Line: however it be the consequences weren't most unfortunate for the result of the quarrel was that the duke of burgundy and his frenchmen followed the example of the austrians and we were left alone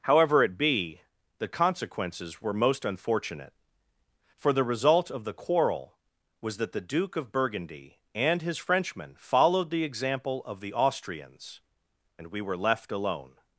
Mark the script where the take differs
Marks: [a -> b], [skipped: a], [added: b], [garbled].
however it be the consequences [weren't -> were] most unfortunate for the result of the quarrel was that the duke of burgundy and his frenchmen followed the example of the austrians and we were left alone